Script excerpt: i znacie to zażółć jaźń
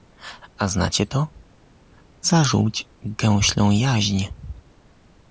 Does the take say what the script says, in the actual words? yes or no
no